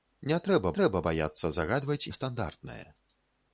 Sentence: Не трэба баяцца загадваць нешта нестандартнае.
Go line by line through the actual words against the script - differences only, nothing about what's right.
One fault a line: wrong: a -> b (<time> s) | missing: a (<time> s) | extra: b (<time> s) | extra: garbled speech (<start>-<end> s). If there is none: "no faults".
extra: трэба (0.8 s)
missing: нешта (2.0 s)